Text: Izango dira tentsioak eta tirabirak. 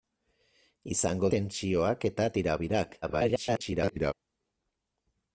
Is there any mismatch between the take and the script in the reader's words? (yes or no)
yes